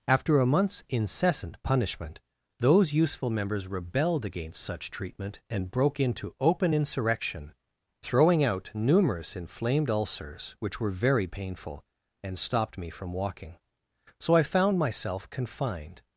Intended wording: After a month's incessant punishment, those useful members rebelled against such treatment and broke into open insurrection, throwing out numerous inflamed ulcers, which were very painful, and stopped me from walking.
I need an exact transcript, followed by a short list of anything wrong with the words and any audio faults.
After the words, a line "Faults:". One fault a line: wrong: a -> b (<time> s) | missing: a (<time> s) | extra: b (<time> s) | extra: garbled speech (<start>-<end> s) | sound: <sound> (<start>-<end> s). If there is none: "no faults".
After a month's incessant punishment, those useful members rebelled against such treatment and broke into open insurrection, throwing out numerous inflamed ulcers, which were very painful, and stopped me from walking. So I found myself confined
Faults:
extra: So I found myself confined (14.2 s)